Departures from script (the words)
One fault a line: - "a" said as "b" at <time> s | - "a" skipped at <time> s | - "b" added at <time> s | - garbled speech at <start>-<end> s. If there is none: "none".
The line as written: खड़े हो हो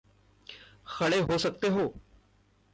- "सकते" added at 1.4 s